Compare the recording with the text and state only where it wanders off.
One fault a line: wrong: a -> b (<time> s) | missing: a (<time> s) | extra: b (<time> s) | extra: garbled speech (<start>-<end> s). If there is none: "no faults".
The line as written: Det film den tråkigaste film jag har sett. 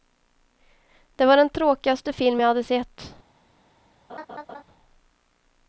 wrong: film -> var (1.2 s)
wrong: har -> hade (2.5 s)